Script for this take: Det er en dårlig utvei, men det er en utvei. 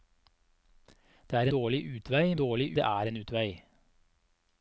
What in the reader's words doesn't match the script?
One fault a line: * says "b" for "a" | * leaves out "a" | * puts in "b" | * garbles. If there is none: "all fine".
* leaves out "en"
* says "dårlig" for "men"